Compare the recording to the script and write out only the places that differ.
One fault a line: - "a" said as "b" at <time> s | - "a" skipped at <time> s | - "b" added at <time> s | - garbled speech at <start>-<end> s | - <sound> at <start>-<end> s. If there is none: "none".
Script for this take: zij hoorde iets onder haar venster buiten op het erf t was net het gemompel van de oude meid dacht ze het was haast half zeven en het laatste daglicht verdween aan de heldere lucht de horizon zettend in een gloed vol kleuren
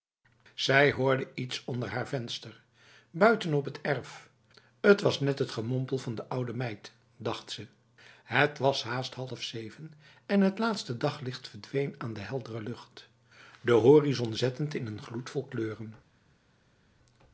none